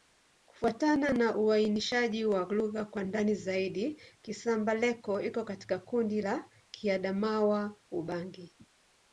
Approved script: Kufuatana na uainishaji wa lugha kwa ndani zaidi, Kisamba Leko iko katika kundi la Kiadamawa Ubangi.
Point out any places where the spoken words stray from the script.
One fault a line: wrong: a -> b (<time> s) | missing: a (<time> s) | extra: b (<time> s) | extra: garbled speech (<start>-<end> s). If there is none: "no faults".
no faults